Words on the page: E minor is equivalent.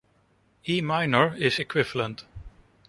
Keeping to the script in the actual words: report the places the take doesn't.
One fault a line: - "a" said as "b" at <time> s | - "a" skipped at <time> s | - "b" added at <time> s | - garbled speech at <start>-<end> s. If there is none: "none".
none